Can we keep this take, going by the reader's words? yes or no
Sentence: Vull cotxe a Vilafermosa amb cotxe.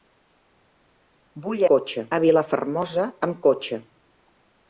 yes